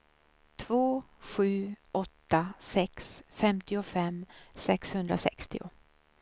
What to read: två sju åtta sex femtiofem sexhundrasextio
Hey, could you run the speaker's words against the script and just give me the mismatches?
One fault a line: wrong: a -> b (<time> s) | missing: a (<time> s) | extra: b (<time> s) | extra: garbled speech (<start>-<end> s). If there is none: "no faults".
no faults